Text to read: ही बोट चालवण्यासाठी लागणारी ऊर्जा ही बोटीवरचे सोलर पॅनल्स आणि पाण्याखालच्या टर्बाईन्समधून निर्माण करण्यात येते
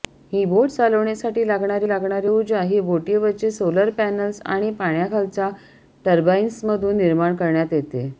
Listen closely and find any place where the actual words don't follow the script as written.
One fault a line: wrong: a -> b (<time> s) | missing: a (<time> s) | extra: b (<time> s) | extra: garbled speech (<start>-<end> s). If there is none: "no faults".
extra: लागणारी (1.9 s)